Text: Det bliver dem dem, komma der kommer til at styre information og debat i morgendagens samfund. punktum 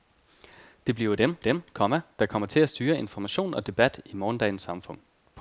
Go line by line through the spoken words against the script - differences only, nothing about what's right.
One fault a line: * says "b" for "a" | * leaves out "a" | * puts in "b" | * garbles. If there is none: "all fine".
all fine